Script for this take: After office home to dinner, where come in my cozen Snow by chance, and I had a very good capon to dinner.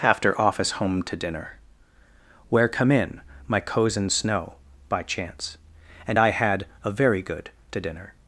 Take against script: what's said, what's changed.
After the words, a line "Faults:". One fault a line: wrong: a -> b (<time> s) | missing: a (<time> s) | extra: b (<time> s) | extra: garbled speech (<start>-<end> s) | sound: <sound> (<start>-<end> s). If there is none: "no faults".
After office home to dinner, where come in my cozen Snow by chance, and I had a very good to dinner.
Faults:
missing: capon (7.5 s)